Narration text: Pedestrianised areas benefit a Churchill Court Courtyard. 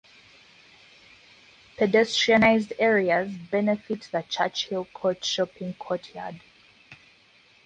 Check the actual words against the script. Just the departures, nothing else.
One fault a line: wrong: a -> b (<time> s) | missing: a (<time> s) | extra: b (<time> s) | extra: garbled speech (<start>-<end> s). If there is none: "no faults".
wrong: a -> the (4.1 s)
extra: Shopping (5.2 s)